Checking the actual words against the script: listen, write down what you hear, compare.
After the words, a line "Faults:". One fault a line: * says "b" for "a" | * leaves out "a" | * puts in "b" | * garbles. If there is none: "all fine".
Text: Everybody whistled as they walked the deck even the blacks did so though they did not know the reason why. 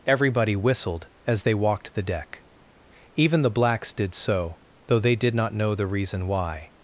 Everybody whistled as they walked the deck even the blacks did so though they did not know the reason why.
Faults:
all fine